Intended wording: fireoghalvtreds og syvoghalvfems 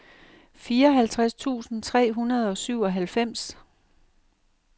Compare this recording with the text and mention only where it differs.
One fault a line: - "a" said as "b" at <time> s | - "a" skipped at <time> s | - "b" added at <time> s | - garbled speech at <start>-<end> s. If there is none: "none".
- "tusind tre hundrede" added at 1.3 s